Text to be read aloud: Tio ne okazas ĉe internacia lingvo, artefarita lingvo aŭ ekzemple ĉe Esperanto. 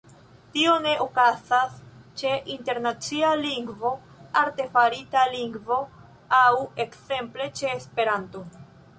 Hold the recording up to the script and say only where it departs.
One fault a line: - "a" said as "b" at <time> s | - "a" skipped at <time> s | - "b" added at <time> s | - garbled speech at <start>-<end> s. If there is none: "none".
none